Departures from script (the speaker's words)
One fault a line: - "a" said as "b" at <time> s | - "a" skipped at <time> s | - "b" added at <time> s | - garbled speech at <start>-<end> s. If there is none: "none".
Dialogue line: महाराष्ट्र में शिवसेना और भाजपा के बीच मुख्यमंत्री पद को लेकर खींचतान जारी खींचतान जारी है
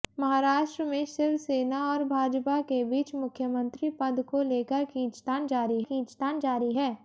none